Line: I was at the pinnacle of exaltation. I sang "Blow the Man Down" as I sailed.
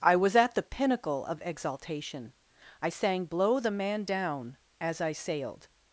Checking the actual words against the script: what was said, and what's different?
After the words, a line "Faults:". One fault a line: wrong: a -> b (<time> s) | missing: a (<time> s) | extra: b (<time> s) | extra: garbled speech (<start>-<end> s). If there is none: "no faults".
I was at the pinnacle of exaltation. I sang "Blow the Man Down" as I sailed.
Faults:
no faults